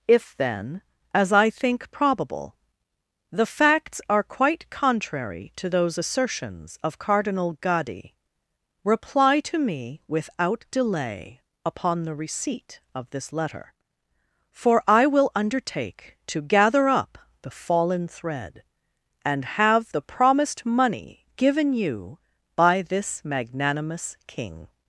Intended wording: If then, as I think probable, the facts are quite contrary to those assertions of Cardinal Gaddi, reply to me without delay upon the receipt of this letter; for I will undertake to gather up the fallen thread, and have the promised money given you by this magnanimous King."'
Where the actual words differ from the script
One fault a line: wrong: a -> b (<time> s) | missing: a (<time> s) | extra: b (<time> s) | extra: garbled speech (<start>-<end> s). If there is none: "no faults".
no faults